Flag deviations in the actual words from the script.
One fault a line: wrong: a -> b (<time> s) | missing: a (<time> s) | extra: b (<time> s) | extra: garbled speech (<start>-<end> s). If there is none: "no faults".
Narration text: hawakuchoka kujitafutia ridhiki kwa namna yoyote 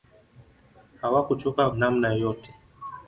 missing: kujitafutia ridhiki kwa (1.7 s)